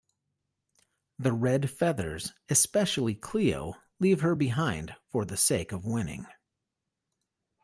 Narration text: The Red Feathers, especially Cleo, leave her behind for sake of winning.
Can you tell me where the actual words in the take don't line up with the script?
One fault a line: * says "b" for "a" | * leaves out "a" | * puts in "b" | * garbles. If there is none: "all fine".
* puts in "the"